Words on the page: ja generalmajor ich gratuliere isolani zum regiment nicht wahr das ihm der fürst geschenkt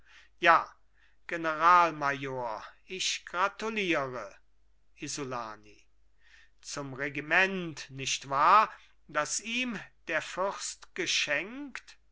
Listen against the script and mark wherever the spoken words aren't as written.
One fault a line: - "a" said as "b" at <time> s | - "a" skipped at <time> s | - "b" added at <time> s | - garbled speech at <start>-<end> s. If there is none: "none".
none